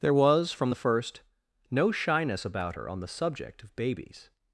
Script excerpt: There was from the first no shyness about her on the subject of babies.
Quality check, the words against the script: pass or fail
pass